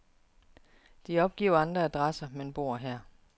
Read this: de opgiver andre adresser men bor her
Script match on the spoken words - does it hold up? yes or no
yes